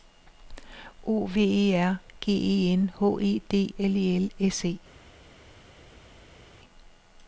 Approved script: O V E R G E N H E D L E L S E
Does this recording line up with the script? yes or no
yes